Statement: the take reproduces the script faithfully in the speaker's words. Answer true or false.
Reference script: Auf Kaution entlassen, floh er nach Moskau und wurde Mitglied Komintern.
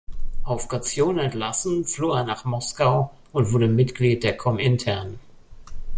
false